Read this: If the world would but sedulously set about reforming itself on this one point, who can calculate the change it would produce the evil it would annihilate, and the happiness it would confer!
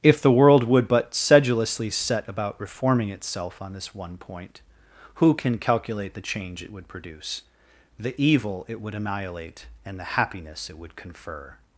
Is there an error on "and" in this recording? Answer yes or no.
no